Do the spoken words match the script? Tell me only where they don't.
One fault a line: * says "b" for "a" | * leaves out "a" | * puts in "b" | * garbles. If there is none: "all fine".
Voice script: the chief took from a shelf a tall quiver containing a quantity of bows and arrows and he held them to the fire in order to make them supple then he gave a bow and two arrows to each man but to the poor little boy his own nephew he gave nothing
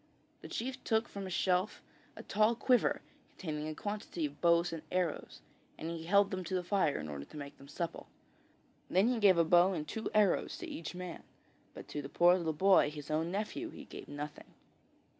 all fine